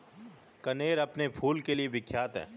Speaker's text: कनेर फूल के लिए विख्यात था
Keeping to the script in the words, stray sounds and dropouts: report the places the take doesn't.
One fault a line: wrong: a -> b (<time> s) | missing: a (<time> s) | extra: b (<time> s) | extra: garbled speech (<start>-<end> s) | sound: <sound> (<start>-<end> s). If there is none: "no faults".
extra: अपने (1.0 s)
wrong: था -> है (2.4 s)